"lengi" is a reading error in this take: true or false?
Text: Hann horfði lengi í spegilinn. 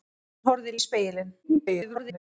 true